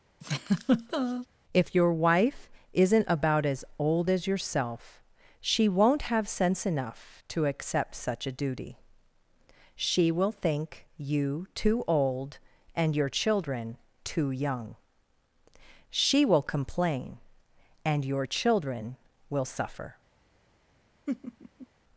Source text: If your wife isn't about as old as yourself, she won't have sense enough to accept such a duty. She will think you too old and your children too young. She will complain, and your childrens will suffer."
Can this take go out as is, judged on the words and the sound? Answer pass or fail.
fail